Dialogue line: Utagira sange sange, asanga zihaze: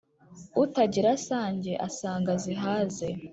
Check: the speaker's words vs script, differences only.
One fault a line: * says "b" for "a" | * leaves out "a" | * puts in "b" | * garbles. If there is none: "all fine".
* leaves out "sange"